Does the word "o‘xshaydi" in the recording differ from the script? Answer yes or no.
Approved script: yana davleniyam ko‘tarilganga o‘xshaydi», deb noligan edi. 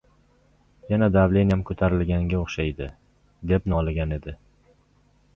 no